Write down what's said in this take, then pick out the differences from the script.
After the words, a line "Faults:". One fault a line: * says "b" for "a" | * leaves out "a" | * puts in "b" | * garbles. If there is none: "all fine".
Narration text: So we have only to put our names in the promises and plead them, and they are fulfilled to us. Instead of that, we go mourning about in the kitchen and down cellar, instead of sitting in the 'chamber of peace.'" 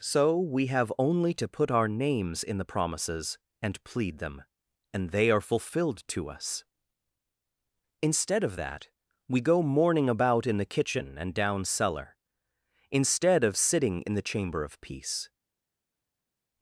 So we have only to put our names in the promises and plead them, and they are fulfilled to us. Instead of that, we go mourning about in the kitchen and down cellar, instead of sitting in the 'chamber of peace.'"
Faults:
all fine